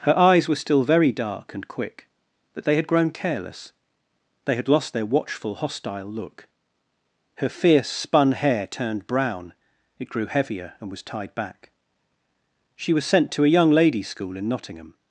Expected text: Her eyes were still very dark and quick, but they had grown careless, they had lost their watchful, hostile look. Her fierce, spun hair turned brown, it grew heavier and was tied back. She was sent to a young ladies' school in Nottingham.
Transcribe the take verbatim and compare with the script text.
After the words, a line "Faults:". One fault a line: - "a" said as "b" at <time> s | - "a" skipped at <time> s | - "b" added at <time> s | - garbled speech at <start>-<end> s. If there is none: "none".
Her eyes were still very dark and quick, but they had grown careless, they had lost their watchful, hostile look. Her fierce, spun hair turned brown, it grew heavier and was tied back. She was sent to a young ladies' school in Nottingham.
Faults:
none